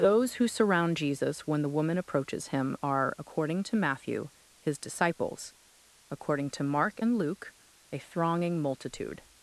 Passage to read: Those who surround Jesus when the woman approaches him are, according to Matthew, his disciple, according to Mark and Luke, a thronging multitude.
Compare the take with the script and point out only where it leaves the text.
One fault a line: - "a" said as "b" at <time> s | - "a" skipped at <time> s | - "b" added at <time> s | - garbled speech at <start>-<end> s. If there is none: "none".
- "disciple" said as "disciples" at 4.8 s